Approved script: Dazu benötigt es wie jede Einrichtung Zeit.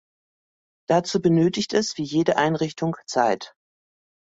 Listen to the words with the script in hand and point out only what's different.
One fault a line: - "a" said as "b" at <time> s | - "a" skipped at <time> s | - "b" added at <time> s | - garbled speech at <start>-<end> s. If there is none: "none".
none